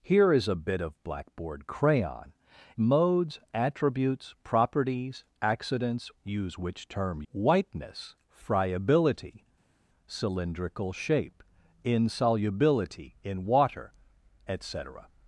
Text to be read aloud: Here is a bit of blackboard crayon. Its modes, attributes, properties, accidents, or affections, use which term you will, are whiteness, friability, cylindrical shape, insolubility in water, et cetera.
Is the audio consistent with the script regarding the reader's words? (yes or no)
no